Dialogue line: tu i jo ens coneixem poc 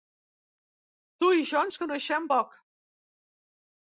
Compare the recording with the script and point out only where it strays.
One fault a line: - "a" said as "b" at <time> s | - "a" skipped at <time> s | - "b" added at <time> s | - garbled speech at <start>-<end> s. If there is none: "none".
none